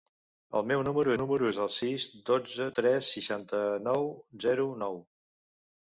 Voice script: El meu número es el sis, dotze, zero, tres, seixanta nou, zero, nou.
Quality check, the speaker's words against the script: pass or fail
fail